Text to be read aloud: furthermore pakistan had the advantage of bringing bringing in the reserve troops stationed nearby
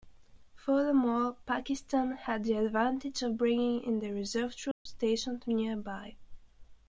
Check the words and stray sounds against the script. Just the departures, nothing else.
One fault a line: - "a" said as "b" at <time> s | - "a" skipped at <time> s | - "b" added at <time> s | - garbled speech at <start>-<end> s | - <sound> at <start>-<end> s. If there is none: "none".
- "bringing" skipped at 3.8 s
- dropout at 4.7-4.9 s